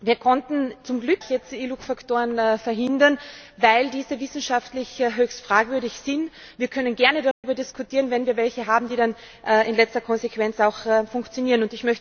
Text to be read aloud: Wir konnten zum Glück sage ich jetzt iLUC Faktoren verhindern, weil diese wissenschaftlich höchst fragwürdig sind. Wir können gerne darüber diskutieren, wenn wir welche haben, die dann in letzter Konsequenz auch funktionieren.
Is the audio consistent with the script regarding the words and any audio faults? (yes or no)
no